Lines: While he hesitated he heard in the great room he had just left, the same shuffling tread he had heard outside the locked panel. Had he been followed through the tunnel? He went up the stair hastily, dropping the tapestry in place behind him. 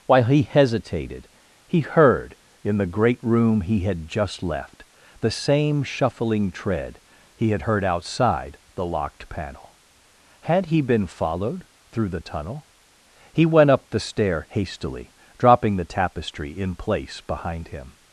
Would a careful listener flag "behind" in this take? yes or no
no